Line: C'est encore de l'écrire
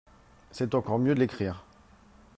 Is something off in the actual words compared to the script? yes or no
yes